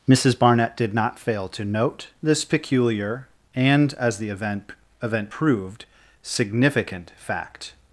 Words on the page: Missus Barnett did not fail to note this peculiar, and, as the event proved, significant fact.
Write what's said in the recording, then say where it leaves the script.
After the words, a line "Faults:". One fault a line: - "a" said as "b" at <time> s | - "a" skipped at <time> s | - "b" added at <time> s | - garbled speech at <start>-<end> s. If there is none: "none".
Missus Barnett did not fail to note this peculiar, and, as the event event proved, significant fact.
Faults:
- "event" added at 5.0 s